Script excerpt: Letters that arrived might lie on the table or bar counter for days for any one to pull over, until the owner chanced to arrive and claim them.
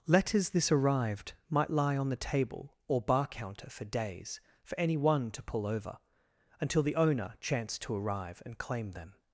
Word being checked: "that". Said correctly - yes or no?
no